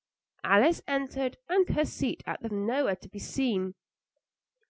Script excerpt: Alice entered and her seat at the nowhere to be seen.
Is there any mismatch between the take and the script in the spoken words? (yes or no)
no